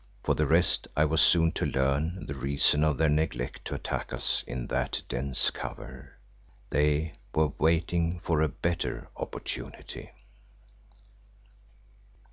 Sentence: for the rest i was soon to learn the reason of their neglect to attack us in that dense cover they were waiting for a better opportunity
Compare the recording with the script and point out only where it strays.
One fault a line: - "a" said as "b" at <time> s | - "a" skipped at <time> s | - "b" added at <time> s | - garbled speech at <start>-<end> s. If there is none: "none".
none